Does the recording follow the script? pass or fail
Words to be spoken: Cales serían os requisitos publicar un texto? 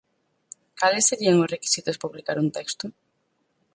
pass